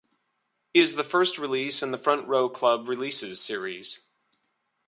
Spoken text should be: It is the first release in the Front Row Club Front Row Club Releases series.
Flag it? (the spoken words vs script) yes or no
yes